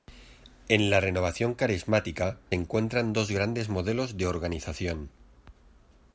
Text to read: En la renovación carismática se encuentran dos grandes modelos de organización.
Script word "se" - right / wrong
wrong